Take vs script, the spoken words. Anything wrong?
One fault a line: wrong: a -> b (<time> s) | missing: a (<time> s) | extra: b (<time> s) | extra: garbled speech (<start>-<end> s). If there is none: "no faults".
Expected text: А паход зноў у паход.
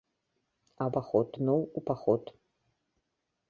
no faults